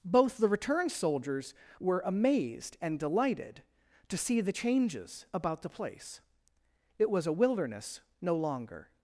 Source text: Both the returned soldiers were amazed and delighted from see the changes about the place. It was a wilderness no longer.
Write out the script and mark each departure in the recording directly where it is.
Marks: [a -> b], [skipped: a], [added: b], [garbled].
Both the returned soldiers were amazed and delighted [from -> to] see the changes about the place. It was a wilderness no longer.